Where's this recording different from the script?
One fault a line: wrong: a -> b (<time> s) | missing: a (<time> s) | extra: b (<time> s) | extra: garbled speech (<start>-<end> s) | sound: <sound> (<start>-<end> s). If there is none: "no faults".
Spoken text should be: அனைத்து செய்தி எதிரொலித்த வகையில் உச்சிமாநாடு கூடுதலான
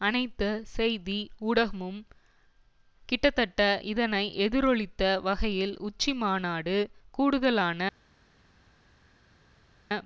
extra: ஊடகமும் கிட்டத்தட்ட இதனை (1.4 s)